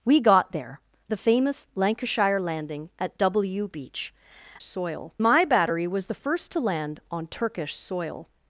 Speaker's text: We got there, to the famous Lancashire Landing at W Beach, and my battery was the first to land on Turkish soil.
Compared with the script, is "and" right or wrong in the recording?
wrong